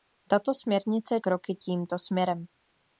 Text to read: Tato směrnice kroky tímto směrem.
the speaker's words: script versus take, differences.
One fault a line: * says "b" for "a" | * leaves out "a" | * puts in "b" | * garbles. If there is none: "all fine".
all fine